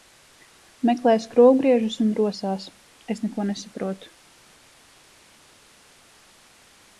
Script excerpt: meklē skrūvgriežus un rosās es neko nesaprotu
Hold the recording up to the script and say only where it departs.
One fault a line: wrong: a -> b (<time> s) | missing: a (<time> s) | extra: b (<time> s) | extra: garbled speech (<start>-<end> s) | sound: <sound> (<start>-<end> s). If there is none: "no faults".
no faults